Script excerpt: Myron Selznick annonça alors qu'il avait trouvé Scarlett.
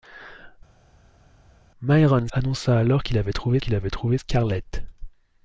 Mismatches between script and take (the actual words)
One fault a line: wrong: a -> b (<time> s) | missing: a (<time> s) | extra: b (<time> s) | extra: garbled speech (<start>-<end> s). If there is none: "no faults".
missing: Selznick (2.3 s)
extra: qu'il avait trouvé (3.6 s)